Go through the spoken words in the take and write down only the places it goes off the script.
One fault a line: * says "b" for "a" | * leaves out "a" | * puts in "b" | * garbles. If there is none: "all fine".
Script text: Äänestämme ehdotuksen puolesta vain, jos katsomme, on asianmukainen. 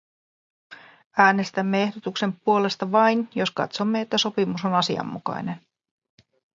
* puts in "että sopimus"